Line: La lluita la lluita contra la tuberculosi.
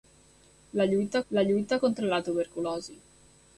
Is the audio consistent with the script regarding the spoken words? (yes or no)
yes